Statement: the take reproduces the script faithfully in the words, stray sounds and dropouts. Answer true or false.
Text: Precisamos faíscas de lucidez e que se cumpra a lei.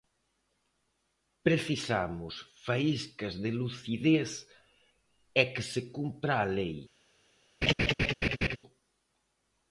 false